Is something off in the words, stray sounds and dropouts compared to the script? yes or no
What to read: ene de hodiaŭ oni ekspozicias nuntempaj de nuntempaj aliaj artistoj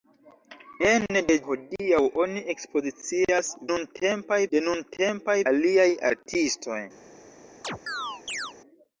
yes